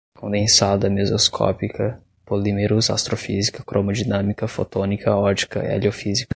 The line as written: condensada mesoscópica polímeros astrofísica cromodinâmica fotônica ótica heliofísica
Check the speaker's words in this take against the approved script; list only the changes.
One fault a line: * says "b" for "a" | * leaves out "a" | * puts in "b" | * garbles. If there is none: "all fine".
all fine